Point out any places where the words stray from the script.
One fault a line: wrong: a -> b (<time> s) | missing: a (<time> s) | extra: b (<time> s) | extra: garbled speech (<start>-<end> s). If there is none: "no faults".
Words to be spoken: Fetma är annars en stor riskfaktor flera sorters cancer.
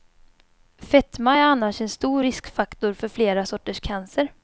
extra: för (2.9 s)